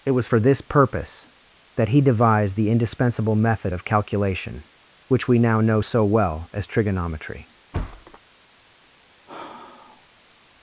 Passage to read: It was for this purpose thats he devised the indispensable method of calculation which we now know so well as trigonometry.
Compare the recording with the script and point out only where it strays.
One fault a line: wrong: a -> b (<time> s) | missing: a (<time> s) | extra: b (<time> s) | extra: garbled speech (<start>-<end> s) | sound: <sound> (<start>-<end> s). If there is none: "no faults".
wrong: thats -> that (1.7 s)
sound: thud (7.7-8.2 s)
sound: sigh (9.3-10.5 s)